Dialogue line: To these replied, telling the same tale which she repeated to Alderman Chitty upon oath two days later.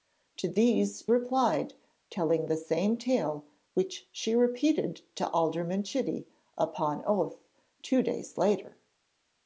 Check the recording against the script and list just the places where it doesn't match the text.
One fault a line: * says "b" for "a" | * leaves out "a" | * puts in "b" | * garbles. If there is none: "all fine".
all fine